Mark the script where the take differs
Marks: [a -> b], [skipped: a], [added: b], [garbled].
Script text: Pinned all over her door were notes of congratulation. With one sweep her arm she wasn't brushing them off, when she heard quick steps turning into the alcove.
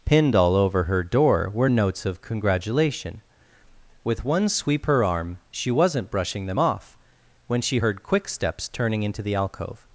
Pinned all over her door were notes of congratulation. With one sweep her arm she wasn't brushing them off, when she heard quick steps turning into the alcove.